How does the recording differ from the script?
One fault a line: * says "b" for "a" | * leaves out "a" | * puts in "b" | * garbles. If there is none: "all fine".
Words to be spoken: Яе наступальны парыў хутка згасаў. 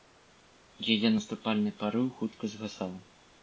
all fine